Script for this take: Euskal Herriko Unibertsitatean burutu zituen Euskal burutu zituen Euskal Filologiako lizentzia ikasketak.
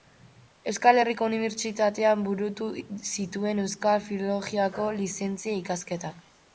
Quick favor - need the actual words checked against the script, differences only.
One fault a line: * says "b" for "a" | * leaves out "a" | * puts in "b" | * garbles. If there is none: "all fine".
* leaves out "burutu zituen Euskal"